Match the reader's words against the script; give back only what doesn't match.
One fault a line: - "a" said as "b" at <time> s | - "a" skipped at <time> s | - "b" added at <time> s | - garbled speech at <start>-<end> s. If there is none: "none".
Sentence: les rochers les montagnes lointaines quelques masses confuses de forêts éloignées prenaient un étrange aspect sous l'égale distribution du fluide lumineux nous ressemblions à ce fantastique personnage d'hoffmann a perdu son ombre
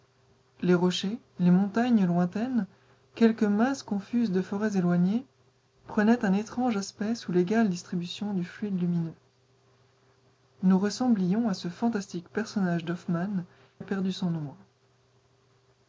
none